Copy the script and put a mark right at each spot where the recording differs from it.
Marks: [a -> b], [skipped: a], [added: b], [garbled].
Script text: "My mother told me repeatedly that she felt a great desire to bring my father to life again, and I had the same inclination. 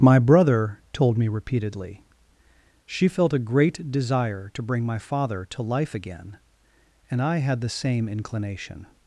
"My [mother -> brother] told me repeatedly [skipped: that] she felt a great desire to bring my father to life again, and I had the same inclination.